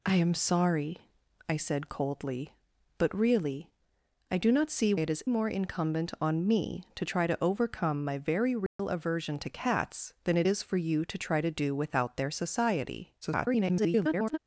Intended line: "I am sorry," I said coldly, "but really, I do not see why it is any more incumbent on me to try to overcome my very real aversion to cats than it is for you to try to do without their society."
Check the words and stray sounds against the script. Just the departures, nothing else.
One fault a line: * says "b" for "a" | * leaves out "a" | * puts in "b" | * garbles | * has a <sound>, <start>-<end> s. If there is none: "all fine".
* leaves out "why"
* leaves out "any"
* has a dropout, 8.7-8.8 s
* garbles